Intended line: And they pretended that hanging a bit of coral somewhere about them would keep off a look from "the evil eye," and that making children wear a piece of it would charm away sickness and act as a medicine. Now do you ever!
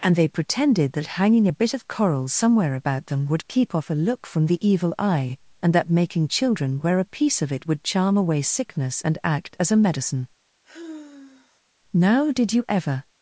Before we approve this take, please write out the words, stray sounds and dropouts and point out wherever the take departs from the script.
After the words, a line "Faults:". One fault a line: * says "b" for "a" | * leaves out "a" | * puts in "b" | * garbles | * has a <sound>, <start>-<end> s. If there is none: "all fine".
And they pretended that hanging a bit of coral somewhere about them would keep off a look from "the evil eye," and that making children wear a piece of it would charm away sickness and act as a medicine. Now did you ever!
Faults:
* has a sigh, 10.6-11.6 s
* says "did" for "do"